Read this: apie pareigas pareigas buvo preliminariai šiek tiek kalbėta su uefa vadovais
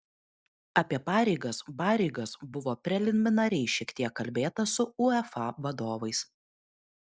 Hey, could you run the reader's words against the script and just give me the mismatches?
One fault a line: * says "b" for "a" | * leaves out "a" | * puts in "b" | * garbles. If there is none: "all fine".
all fine